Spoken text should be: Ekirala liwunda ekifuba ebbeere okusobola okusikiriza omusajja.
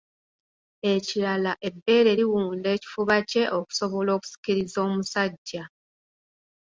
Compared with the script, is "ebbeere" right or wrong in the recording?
wrong